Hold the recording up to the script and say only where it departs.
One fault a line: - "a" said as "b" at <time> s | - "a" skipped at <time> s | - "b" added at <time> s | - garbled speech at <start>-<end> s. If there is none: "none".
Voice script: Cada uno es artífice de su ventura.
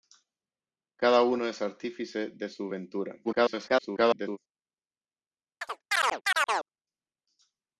- garbled speech at 3.2-4.4 s